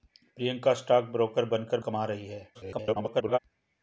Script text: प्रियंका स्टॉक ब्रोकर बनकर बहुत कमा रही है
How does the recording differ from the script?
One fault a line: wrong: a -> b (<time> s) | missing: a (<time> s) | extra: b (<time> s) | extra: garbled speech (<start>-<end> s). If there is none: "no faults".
missing: बहुत (1.8 s)
extra: garbled speech (2.5-3.4 s)